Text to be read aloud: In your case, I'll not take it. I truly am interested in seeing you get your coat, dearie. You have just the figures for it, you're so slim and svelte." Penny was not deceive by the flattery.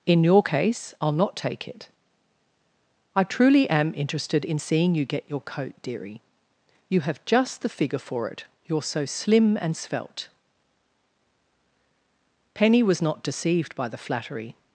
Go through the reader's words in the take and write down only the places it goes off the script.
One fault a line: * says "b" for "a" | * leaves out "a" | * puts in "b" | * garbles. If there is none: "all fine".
* says "figure" for "figures"
* says "deceived" for "deceive"